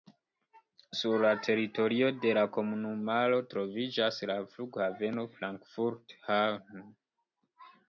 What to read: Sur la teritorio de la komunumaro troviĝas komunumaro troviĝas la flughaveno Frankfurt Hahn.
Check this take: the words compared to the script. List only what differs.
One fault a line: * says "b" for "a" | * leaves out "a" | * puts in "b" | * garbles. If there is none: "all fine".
* leaves out "komunumaro troviĝas"